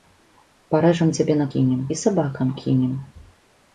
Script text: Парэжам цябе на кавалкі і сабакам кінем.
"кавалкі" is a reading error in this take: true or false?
true